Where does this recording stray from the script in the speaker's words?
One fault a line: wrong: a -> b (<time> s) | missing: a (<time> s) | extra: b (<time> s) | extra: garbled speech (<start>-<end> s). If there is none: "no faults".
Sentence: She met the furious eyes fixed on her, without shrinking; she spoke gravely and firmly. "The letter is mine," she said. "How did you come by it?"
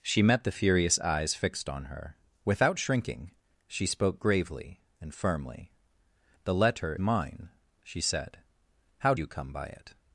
missing: is (7.0 s)
missing: did (9.1 s)